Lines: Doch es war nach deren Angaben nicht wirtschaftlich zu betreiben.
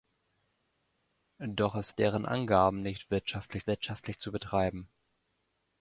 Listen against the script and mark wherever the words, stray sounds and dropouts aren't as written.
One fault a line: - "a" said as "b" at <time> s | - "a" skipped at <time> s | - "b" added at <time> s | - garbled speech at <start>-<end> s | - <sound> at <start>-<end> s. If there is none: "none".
- "war nach" skipped at 1.9 s
- "wirtschaftlich" added at 3.7 s